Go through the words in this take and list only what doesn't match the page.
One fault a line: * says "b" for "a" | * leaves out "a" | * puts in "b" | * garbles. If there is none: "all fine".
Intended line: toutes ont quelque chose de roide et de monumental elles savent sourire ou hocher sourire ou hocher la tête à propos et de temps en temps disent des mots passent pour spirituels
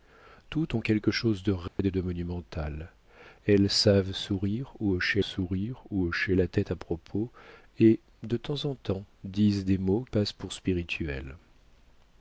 all fine